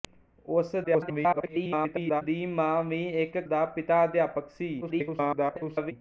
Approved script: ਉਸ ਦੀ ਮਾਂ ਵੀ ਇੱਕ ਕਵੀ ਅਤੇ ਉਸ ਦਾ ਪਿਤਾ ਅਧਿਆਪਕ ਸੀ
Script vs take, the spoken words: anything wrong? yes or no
yes